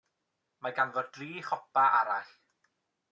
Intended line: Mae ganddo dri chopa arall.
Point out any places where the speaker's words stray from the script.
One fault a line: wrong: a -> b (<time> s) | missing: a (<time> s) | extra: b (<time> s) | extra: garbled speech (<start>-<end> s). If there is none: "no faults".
no faults